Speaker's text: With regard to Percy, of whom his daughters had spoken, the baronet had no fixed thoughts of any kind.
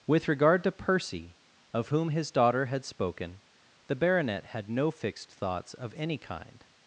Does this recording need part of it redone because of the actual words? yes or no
yes